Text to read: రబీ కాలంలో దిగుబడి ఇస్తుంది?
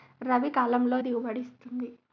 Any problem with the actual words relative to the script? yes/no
no